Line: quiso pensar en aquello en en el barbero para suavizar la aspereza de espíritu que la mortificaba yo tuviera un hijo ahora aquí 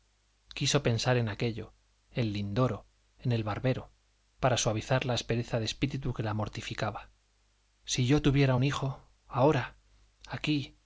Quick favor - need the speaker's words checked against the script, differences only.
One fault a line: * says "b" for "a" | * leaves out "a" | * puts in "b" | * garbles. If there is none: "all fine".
* puts in "lindoro"
* puts in "si"